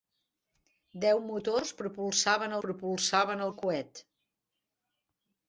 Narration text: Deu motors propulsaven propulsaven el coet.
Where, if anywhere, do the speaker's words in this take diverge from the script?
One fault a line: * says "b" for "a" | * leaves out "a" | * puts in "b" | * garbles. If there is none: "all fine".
all fine